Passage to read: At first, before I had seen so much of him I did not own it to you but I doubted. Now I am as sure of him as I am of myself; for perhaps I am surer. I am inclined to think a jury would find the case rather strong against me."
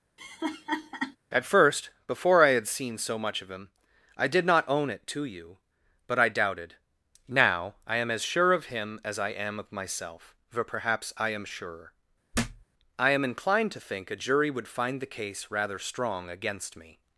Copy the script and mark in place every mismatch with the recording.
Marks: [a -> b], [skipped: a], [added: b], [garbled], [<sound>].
[laugh] At first, before I had seen so much of him I did not own it to you but I doubted. Now I am as sure of him as I am of myself; for perhaps I am surer. [thud] I am inclined to think a jury would find the case rather strong against me."